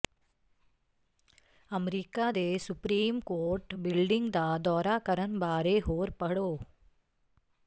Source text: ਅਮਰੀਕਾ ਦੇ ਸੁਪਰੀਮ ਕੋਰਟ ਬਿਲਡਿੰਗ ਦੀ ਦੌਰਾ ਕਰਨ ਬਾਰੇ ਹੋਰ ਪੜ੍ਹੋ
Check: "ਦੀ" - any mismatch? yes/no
yes